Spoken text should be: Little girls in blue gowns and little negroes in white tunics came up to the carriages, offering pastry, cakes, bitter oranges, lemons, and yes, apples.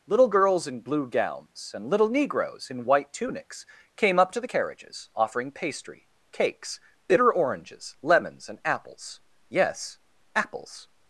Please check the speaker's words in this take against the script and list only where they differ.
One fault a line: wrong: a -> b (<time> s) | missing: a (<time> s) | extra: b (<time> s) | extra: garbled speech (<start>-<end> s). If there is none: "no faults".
extra: apples (8.6 s)